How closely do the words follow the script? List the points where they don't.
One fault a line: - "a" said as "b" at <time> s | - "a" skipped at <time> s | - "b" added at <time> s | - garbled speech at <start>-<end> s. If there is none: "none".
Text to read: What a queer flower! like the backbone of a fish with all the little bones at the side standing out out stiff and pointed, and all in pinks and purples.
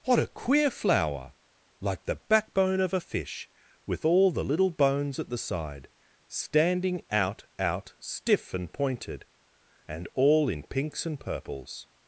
none